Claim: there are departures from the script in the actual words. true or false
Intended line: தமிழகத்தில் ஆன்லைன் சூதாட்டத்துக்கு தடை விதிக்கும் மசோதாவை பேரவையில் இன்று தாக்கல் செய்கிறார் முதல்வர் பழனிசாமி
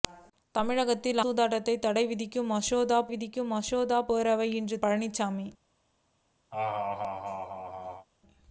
true